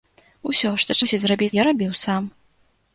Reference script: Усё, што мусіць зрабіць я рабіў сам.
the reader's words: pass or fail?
pass